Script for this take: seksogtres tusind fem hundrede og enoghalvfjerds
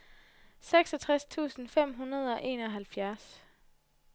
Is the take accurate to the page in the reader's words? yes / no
yes